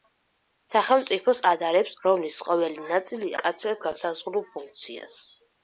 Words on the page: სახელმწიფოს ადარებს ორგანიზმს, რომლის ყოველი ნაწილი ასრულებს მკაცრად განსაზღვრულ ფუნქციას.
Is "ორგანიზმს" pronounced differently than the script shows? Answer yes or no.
yes